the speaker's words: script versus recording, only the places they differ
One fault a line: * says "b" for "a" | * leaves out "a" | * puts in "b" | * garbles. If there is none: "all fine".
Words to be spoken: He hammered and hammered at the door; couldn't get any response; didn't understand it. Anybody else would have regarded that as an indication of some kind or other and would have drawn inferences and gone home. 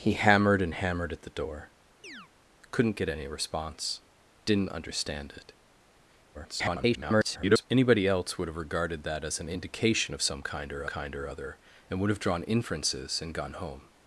* garbles
* puts in "kind or"